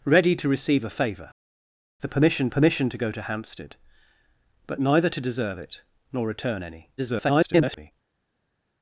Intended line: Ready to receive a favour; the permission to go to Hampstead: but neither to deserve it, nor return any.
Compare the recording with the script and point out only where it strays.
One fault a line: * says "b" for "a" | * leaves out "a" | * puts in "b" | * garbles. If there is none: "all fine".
* puts in "permission"
* garbles